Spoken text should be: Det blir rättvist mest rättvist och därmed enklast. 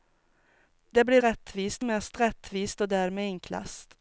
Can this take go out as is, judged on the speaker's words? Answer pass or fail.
pass